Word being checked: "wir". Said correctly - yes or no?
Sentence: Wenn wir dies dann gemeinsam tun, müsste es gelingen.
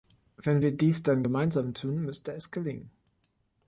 yes